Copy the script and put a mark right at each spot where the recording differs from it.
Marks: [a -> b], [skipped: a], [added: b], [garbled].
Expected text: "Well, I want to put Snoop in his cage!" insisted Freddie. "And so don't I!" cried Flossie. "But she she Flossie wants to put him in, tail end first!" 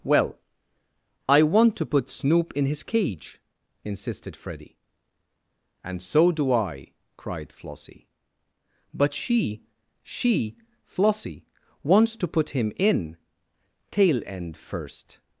"Well, I want to put Snoop in his cage!" insisted Freddie. "And so [don't -> do] I!" cried Flossie. "But she she Flossie wants to put him in, tail end first!"